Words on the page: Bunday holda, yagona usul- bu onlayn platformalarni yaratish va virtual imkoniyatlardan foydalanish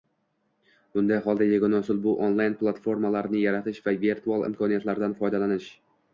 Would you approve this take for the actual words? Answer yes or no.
yes